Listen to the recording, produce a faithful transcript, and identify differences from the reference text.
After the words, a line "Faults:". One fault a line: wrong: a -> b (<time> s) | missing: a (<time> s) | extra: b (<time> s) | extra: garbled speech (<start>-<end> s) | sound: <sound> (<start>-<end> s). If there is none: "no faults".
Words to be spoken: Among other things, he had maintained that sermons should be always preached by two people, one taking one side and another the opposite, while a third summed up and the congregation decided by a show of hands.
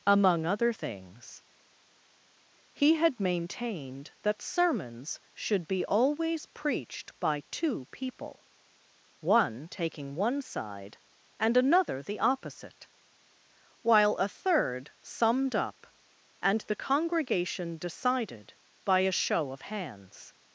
Among other things, he had maintained that sermons should be always preached by two people, one taking one side and another the opposite, while a third summed up and the congregation decided by a show of hands.
Faults:
no faults